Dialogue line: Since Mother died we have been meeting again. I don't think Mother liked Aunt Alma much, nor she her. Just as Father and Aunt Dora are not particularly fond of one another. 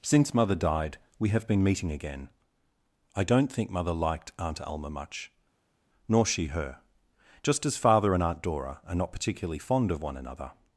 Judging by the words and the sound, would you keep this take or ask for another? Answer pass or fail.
pass